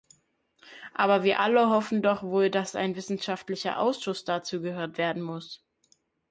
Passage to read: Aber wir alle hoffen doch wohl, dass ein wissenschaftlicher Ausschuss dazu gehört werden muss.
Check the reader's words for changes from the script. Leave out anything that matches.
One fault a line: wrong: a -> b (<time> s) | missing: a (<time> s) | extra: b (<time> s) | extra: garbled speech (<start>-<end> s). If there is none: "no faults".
no faults